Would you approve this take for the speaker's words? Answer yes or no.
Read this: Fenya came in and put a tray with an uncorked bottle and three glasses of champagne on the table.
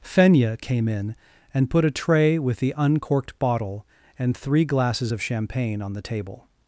no